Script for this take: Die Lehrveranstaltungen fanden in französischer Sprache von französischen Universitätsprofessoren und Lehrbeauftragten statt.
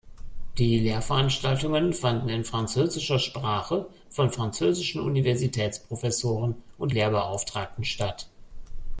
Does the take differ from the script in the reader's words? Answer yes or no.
no